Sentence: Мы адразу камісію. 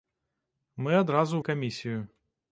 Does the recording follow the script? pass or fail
pass